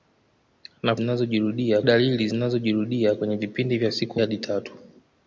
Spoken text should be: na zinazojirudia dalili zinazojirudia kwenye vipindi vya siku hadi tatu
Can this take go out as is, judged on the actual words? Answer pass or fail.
pass